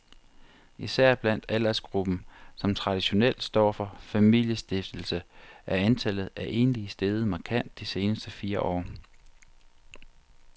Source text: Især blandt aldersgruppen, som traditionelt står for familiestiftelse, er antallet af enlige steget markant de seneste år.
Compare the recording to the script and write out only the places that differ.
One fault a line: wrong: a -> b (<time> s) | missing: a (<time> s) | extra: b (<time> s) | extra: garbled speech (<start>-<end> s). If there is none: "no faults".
extra: fire (8.3 s)